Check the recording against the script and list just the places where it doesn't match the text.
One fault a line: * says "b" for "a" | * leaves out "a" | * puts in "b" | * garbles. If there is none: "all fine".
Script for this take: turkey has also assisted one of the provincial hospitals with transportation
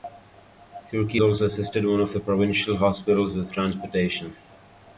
* leaves out "has"